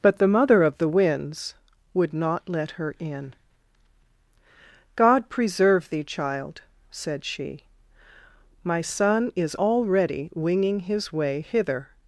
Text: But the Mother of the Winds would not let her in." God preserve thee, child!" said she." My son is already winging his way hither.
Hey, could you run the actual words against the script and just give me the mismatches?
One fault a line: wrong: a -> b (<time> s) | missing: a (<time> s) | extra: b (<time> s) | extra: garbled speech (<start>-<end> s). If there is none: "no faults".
no faults